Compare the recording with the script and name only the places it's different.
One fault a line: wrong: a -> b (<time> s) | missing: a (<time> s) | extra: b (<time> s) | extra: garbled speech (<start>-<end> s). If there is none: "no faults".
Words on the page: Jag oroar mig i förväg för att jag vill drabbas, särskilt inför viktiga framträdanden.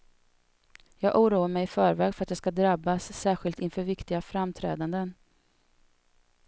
wrong: vill -> ska (2.4 s)